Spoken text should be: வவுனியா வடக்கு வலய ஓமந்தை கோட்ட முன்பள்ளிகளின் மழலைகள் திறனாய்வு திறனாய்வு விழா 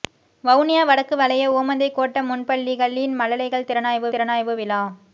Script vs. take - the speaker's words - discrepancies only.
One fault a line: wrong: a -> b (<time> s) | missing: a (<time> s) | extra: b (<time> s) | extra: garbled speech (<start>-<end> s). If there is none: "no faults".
no faults